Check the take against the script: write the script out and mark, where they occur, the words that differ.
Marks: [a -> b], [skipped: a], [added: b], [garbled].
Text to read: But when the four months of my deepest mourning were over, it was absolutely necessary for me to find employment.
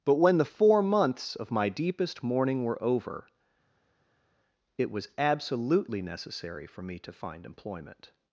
But when the four months of my deepest mourning were over, it was absolutely necessary for me to find employment.